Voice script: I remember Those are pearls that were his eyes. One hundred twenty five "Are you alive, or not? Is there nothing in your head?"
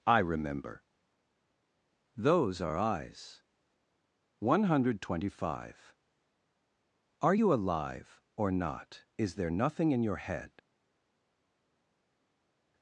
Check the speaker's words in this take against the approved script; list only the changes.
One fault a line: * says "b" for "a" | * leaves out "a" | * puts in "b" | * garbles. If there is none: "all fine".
* leaves out "pearls that were his"